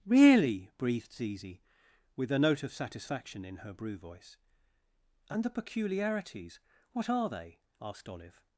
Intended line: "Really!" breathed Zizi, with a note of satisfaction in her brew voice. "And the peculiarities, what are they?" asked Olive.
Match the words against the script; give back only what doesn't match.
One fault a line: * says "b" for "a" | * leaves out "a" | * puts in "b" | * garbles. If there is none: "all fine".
all fine